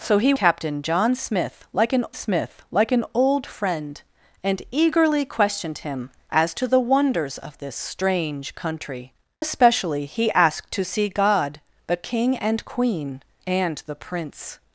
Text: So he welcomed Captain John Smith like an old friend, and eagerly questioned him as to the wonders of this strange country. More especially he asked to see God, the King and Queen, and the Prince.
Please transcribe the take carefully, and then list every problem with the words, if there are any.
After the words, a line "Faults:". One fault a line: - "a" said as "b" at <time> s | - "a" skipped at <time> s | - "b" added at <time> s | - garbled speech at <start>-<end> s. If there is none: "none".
So he Captain John Smith like an Smith like an old friend, and eagerly questioned him as to the wonders of this strange country. Especially he asked to see God, the King and Queen, and the Prince.
Faults:
- "welcomed" skipped at 0.3 s
- "Smith like an" added at 2.1 s
- "More" skipped at 9.1 s